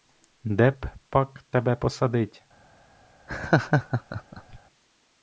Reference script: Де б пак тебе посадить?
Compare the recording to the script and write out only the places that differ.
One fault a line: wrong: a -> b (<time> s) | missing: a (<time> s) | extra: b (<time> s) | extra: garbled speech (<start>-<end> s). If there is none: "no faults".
no faults